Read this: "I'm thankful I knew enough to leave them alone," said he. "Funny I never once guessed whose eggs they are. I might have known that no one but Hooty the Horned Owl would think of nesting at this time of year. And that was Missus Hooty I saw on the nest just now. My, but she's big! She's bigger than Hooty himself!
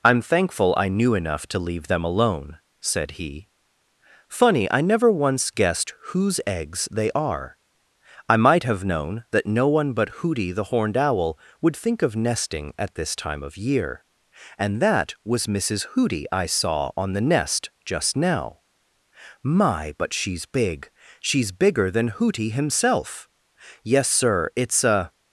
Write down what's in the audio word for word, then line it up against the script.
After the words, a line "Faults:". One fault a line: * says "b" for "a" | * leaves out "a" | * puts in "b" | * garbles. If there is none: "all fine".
"I'm thankful I knew enough to leave them alone," said he. "Funny I never once guessed whose eggs they are. I might have known that no one but Hooty the Horned Owl would think of nesting at this time of year. And that was Missus Hooty I saw on the nest just now. My, but she's big! She's bigger than Hooty himself! Yes, Sir, it's a
Faults:
* puts in "Yes Sir it's a"